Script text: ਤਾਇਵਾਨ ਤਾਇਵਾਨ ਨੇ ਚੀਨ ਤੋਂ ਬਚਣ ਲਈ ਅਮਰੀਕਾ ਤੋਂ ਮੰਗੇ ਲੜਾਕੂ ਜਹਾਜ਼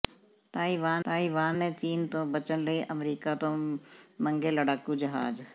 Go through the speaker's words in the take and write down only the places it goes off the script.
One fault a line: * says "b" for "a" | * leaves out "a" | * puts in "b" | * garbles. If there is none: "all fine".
all fine